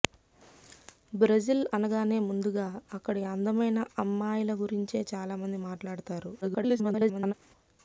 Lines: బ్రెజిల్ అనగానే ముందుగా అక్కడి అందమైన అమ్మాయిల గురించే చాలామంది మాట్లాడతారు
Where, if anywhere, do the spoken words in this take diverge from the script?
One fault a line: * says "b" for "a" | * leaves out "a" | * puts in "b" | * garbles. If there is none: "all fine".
* garbles